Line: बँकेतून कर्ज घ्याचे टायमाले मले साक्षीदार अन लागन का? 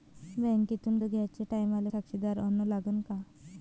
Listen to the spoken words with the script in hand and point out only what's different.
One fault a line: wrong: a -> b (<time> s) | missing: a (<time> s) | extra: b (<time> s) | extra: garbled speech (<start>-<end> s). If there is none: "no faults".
missing: कर्ज (1.0 s)
missing: मले (1.9 s)